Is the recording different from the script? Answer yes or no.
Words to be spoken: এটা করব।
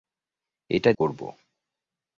no